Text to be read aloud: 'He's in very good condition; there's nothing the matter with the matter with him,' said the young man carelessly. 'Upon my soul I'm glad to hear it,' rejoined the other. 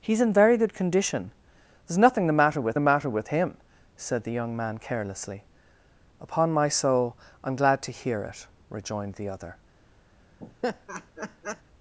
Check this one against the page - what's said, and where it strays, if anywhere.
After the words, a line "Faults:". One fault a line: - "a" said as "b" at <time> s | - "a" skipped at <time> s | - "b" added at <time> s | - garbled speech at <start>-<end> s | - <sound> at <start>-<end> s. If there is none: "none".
'He's in very good condition; there's nothing the matter with the matter with him,' said the young man carelessly. 'Upon my soul I'm glad to hear it,' rejoined the other.
Faults:
- laugh at 10.4-11.6 s